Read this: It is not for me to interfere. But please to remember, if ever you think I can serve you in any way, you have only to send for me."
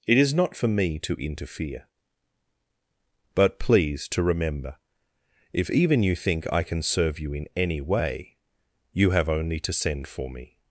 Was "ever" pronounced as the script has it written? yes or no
no